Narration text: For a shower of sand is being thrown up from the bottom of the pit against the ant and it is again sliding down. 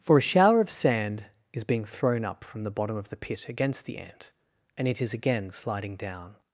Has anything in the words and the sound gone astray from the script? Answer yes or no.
no